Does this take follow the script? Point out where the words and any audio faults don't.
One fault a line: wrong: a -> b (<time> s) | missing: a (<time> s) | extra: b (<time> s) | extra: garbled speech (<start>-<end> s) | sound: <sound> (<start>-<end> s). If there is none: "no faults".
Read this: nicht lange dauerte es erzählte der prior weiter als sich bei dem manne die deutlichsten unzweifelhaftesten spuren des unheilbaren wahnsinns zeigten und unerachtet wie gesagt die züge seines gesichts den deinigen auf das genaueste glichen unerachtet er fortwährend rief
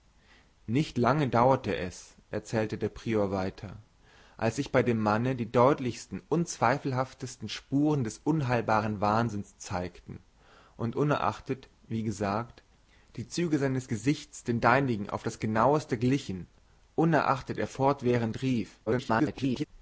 extra: garbled speech (18.9-19.7 s)